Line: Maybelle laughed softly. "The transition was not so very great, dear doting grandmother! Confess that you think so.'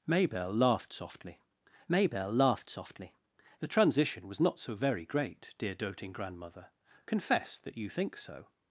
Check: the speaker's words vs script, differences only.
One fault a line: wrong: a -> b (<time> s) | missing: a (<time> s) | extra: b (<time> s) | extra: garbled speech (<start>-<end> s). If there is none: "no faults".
extra: maybelle laughed softly (1.9 s)